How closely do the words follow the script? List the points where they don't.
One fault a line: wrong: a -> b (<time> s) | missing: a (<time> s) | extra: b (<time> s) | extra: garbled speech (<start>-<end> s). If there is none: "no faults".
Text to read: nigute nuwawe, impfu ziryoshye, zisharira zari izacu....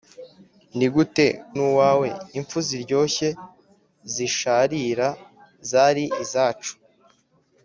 no faults